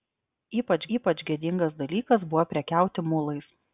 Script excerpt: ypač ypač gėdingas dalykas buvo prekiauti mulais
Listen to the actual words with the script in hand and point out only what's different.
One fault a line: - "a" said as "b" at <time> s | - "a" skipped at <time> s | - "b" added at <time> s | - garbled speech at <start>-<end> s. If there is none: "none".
none